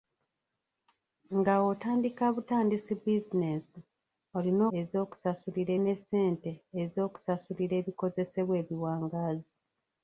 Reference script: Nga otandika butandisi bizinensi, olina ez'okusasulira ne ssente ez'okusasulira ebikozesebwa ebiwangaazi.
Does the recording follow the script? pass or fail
pass